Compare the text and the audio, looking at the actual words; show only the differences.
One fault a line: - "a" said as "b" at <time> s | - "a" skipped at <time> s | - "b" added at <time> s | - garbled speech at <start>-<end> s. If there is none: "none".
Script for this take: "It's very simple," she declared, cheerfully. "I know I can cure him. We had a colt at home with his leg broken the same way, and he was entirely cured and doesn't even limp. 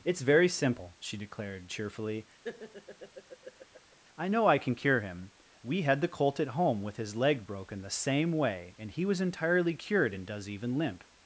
- "a" said as "the" at 6.0 s
- "doesn't" said as "does" at 10.2 s